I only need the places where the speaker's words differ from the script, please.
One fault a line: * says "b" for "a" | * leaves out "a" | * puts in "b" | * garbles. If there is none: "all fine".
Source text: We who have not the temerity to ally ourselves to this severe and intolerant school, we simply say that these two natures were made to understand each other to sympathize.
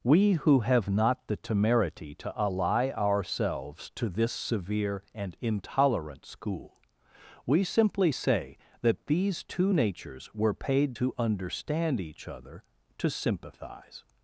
* says "paid" for "made"